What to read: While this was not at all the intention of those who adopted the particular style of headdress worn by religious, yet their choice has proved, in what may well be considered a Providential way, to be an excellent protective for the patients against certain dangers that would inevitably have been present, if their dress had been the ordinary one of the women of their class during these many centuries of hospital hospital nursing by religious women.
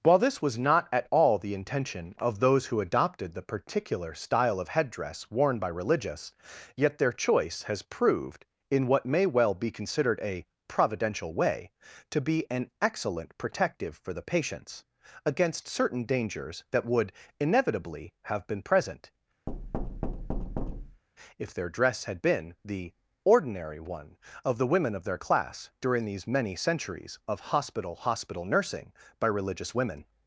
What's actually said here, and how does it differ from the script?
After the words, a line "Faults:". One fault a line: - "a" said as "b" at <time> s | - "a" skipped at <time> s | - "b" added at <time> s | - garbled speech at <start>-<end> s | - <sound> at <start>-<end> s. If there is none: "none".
While this was not at all the intention of those who adopted the particular style of headdress worn by religious, yet their choice has proved, in what may well be considered a Providential way, to be an excellent protective for the patients against certain dangers that would inevitably have been present, if their dress had been the ordinary one of the women of their class during these many centuries of hospital hospital nursing by religious women.
Faults:
- thud at 19.5-21.0 s